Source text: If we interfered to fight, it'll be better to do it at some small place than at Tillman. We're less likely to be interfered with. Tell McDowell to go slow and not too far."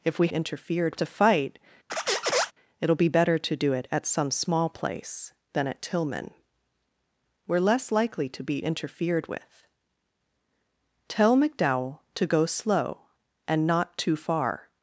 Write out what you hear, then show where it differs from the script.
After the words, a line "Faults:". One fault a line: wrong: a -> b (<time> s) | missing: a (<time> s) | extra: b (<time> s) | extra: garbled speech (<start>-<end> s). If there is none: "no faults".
If we interfered to fight, it'll be better to do it at some small place than at Tillman. We're less likely to be interfered with. Tell McDowell to go slow and not too far."
Faults:
no faults